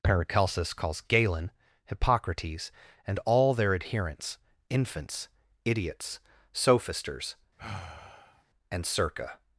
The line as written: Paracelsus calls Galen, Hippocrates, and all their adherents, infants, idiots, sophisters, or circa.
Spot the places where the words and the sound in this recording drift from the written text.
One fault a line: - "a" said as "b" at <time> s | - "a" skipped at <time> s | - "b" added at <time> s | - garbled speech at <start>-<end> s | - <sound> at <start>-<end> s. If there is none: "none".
- sigh at 7.6-8.4 s
- "or" said as "and" at 8.7 s